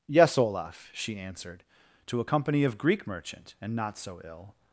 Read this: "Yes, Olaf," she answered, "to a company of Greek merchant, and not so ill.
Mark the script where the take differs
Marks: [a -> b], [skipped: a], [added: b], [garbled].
"Yes, Olaf," she answered, "to a company of Greek merchant, and not so ill.